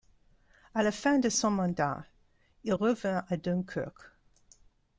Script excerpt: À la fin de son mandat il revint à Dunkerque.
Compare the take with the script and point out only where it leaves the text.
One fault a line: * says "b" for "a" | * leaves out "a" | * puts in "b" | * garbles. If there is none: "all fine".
all fine